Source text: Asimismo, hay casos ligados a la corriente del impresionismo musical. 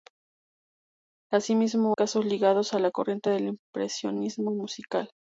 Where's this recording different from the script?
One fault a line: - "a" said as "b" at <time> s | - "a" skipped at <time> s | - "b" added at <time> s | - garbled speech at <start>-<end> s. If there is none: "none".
- "hay" skipped at 1.9 s